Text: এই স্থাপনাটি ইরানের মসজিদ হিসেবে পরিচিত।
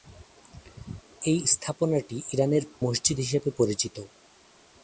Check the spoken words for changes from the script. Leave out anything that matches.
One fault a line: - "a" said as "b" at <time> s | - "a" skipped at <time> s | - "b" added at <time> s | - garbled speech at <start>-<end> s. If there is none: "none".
none